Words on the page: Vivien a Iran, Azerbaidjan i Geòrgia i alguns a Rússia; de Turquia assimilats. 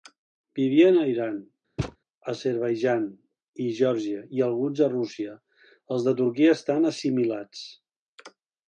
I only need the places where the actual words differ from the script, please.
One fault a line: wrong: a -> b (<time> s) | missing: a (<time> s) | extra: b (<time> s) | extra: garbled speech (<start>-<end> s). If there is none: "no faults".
extra: els (6.0 s)
extra: estan (6.6 s)